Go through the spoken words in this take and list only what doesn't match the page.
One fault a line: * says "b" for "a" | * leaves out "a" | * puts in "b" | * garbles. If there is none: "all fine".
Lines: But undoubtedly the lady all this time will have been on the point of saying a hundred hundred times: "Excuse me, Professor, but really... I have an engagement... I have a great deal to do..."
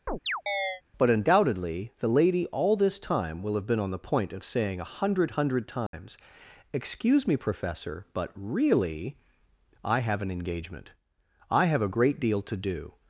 all fine